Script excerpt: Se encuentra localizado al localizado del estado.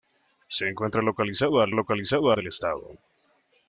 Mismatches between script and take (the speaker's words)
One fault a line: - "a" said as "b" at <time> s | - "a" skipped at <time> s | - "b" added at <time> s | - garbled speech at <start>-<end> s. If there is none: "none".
none